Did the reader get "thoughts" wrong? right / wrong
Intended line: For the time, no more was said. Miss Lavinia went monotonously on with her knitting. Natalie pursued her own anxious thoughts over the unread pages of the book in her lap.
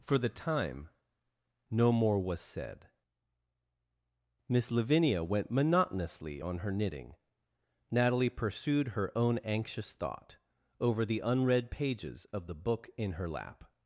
wrong